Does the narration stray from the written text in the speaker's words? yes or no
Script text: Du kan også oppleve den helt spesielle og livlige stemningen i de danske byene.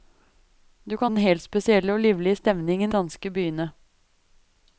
yes